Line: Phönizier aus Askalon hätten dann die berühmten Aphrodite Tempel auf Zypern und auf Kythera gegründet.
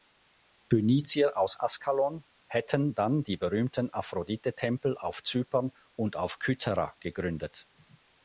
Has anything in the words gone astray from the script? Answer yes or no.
no